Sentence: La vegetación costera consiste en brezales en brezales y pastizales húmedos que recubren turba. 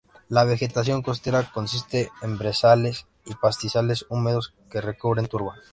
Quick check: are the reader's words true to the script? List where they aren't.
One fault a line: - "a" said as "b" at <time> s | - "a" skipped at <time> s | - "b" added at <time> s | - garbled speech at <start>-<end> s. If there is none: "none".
- "en brezales" skipped at 3.0 s